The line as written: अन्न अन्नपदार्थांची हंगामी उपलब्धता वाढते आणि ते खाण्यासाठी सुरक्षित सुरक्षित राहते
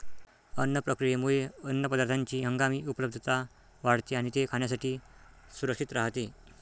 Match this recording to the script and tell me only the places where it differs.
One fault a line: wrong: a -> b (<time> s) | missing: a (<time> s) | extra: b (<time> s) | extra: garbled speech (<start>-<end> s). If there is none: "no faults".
extra: प्रक्रियेमुळे (0.8 s)
missing: सुरक्षित (5.9 s)